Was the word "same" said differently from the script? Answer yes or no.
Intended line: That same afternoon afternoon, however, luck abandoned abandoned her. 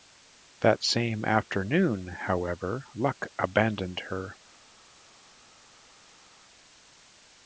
no